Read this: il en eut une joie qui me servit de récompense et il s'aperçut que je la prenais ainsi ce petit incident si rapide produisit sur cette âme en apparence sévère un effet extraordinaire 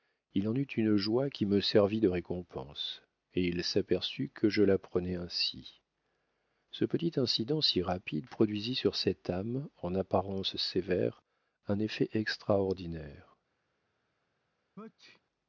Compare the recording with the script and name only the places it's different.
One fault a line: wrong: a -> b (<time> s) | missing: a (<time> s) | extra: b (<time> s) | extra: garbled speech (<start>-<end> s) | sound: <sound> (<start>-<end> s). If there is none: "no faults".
sound: sneeze (14.8-15.2 s)